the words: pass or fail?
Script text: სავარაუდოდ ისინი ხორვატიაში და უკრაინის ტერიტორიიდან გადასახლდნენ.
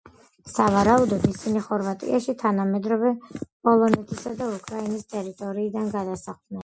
fail